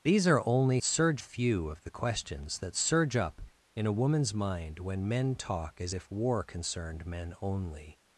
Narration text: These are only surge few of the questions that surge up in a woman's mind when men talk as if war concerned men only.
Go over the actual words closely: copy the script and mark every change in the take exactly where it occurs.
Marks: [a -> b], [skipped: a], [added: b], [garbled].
These are only surge few of the questions that surge up in a woman's mind when men talk as if war concerned men only.